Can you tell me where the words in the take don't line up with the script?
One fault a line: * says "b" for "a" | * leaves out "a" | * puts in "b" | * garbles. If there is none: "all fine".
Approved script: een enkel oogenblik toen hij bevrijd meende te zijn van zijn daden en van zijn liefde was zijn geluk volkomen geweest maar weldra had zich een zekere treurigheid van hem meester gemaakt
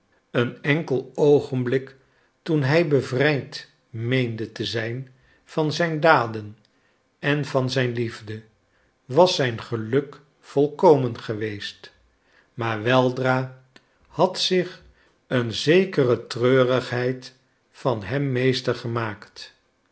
all fine